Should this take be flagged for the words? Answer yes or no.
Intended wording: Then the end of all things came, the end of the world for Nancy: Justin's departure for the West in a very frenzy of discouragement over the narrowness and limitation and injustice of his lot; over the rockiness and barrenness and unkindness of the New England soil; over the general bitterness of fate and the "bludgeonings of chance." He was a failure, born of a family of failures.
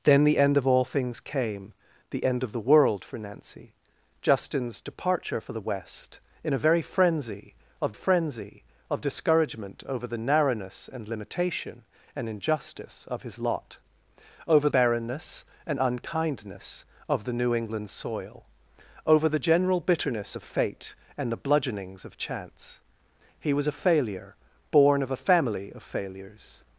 yes